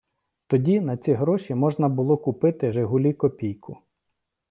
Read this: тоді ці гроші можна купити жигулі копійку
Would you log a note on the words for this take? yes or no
yes